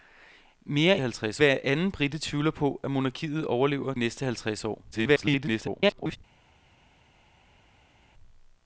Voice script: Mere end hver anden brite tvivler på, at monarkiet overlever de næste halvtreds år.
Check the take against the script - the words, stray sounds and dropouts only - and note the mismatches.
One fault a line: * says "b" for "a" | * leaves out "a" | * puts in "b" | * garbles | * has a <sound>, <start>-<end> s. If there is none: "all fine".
* says "halvtreds" for "end"
* leaves out "de"
* garbles